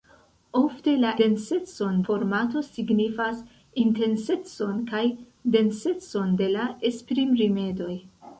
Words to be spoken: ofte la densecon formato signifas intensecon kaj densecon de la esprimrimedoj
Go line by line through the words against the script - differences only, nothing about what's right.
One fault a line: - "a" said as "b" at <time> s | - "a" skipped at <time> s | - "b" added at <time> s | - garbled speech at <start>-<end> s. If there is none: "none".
none